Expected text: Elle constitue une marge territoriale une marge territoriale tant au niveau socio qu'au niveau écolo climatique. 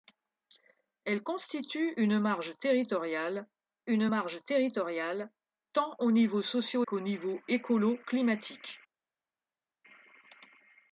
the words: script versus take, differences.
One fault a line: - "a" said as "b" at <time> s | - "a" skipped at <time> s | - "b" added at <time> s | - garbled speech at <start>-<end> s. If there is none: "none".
none